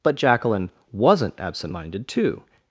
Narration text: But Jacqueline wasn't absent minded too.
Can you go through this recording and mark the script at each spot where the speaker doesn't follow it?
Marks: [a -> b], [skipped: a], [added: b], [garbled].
But Jacqueline wasn't absent minded too.